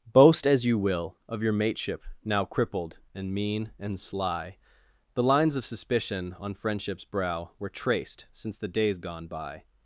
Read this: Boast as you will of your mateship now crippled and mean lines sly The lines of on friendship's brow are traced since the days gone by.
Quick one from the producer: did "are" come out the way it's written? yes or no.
no